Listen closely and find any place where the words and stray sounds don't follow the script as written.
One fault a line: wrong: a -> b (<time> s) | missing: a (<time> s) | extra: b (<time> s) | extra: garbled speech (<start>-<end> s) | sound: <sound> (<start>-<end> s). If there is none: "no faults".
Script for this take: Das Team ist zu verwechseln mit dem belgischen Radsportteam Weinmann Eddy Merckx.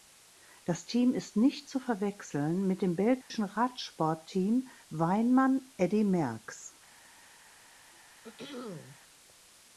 extra: nicht (1.4 s)
sound: dropout (3.2-3.3 s)
sound: throat clearing (7.9-9.0 s)